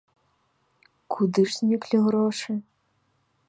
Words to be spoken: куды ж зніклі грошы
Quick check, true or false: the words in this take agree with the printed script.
true